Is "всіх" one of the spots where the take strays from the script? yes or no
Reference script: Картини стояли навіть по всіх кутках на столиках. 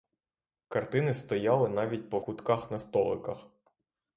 yes